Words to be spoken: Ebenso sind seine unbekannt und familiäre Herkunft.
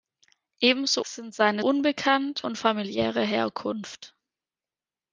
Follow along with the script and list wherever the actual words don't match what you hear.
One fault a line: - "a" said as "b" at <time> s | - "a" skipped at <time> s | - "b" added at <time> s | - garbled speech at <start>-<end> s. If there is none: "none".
none